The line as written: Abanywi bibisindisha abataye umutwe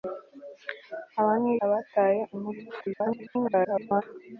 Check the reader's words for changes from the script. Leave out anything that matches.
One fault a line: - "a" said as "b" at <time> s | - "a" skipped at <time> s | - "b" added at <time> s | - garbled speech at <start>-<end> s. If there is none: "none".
- "bibisindisha" skipped at 1.5 s
- garbled speech at 2.8-4.0 s